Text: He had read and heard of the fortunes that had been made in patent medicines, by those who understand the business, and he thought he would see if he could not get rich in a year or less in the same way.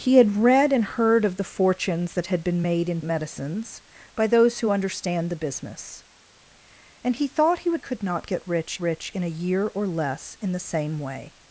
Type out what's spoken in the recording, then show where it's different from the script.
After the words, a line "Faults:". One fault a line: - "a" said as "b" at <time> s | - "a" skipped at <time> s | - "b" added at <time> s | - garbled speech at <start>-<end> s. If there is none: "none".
He had read and heard of the fortunes that had been made in medicines, by those who understand the business, and he thought he would could not get rich rich in a year or less in the same way.
Faults:
- "patent" skipped at 3.0 s
- "see if he" skipped at 7.8 s
- "rich" added at 8.8 s